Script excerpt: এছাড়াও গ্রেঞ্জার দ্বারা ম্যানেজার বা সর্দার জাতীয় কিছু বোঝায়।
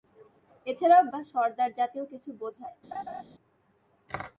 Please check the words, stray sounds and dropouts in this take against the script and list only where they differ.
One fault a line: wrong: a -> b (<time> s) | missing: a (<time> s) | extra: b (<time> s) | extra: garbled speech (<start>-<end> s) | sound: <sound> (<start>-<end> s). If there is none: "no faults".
missing: গ্রেঞ্জার দ্বারা ম্যানেজার (1.0 s)
sound: laugh (2.9-3.2 s)